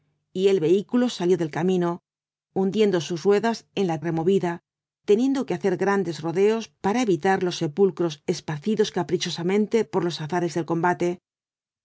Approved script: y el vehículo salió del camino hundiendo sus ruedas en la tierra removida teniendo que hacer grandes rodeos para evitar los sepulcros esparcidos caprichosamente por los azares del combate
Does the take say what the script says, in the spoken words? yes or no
no